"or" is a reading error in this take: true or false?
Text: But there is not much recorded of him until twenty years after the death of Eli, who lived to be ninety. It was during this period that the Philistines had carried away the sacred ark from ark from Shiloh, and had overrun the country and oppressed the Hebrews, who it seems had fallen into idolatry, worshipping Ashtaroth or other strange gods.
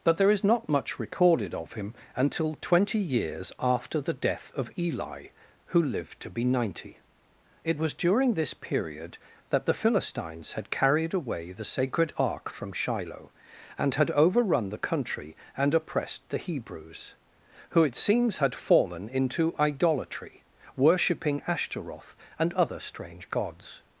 true